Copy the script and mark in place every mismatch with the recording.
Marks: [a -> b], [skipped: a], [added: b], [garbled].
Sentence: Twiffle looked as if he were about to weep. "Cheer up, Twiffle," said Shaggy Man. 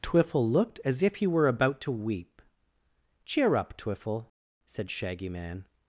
Twiffle looked as if he were about to weep. "Cheer up, Twiffle," said Shaggy Man.